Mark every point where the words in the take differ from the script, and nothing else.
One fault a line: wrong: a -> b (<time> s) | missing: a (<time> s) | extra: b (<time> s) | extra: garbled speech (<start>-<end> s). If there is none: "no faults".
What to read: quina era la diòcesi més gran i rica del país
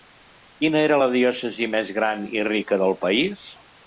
no faults